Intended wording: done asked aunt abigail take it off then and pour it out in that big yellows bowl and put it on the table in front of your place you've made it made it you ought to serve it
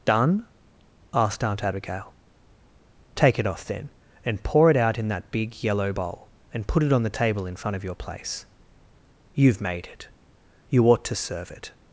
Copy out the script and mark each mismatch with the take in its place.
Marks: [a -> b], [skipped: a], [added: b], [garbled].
done asked aunt abigail take it off then and pour it out in that big [yellows -> yellow] bowl and put it on the table in front of your place you've made it [skipped: made it] you ought to serve it